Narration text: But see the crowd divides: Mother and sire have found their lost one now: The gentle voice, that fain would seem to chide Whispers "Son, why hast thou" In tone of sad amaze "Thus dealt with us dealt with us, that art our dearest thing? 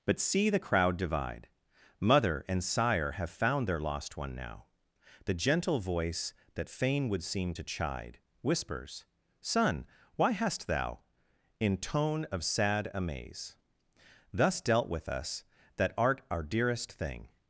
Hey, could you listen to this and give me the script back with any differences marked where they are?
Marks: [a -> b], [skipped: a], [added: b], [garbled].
But see the crowd [divides: -> divide] Mother and sire have found their lost one now: The gentle voice, that fain would seem to chide Whispers "Son, why hast thou" In tone of sad amaze "Thus dealt with us [skipped: dealt with us,] that art our dearest thing?